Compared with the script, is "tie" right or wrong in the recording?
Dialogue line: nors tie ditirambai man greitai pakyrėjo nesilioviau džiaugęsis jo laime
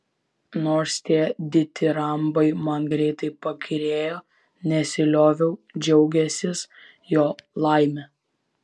right